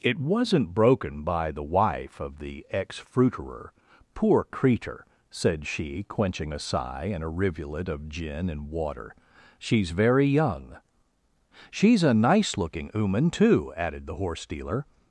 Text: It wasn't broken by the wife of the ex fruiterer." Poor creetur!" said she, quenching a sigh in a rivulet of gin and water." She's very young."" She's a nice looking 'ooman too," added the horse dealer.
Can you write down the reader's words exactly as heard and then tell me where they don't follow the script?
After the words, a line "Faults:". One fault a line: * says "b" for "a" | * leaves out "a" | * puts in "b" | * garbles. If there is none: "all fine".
It wasn't broken by the wife of the ex fruiterer." Poor creetur!" said she, quenching a sigh in a rivulet of gin and water." She's very young."" She's a nice looking 'ooman too," added the horse dealer.
Faults:
all fine